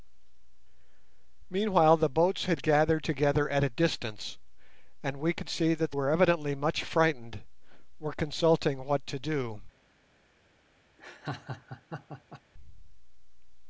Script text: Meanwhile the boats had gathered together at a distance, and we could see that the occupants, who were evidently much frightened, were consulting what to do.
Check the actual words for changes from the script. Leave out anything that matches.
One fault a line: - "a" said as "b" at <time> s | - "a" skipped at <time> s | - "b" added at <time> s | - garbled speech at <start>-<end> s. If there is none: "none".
- "the occupants who" skipped at 5.9 s